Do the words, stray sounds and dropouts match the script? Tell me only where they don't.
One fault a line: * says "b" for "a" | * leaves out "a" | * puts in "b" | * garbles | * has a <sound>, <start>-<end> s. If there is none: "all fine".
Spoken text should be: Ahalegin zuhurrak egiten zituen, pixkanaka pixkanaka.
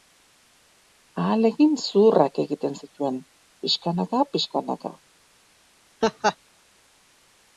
* has a laugh, 6.0-6.4 s